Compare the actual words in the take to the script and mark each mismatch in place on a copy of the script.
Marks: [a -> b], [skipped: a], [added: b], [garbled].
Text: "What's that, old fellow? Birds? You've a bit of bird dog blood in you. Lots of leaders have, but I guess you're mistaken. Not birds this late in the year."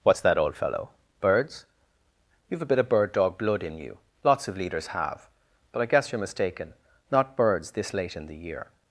"What's that, old fellow? Birds? You've a bit of bird dog blood in you. Lots of leaders have, but I guess you're mistaken. Not birds this late in the year."